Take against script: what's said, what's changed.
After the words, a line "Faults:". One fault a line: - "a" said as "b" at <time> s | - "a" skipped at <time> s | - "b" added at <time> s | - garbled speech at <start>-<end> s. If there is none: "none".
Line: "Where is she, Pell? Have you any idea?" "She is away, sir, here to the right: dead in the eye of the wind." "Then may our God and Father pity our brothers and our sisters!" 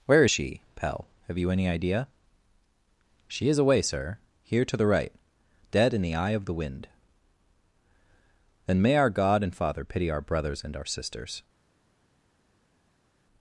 "Where is she, Pell? Have you any idea?" "She is away, sir, here to the right: dead in the eye of the wind." "Then may our God and Father pity our brothers and our sisters!"
Faults:
none